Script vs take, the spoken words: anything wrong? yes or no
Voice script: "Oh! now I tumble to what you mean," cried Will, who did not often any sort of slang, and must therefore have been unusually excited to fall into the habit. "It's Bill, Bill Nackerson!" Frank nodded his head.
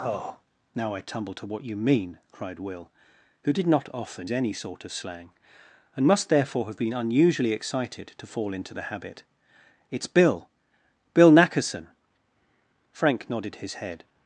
no